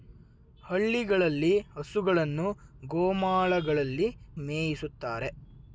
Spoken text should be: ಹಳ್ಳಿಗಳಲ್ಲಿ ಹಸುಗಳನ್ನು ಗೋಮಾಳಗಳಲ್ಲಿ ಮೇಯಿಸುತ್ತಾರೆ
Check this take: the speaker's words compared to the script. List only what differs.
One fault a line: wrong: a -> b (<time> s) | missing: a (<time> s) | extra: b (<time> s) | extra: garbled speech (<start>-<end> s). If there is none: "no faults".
no faults